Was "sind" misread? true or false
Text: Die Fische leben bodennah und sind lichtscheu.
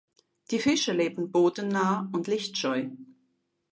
true